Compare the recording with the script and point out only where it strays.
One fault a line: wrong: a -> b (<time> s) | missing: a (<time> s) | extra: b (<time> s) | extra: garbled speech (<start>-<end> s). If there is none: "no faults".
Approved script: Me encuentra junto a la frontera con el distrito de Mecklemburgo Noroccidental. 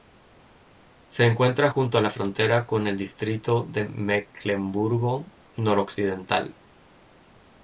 wrong: Me -> Se (1.1 s)